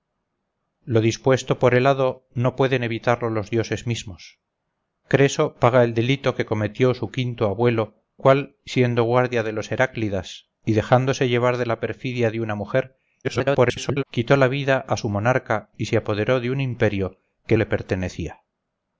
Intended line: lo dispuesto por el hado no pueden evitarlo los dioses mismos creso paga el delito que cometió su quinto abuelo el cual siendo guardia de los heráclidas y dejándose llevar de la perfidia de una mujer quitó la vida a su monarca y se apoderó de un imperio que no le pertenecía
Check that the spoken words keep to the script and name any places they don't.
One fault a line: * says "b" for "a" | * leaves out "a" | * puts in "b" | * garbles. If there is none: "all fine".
* leaves out "el"
* garbles
* leaves out "no"